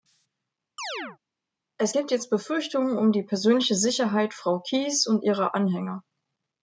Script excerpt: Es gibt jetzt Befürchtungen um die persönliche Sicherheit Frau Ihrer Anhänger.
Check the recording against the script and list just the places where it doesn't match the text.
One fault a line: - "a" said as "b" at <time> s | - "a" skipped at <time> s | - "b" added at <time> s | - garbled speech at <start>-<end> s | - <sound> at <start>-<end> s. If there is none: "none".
- chirp at 0.8-1.2 s
- "Kyis und" added at 4.6 s